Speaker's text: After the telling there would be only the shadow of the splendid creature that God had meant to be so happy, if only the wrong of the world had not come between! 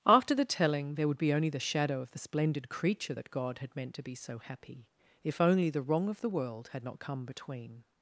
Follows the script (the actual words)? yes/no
yes